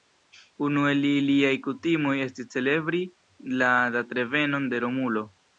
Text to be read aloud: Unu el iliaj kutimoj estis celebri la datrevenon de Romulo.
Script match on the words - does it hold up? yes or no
yes